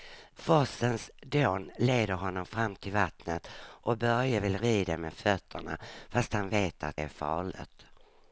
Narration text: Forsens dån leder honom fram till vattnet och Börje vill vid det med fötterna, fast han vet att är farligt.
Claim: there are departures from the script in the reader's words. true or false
false